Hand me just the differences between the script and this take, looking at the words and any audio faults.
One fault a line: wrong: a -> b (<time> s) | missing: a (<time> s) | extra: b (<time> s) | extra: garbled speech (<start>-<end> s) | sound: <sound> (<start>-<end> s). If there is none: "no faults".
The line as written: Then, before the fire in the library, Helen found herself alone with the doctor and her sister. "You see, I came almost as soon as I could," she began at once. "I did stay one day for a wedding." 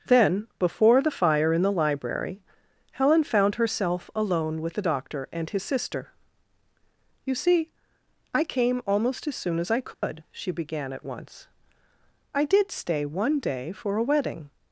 wrong: her -> his (5.5 s)
sound: dropout (9.9-10.0 s)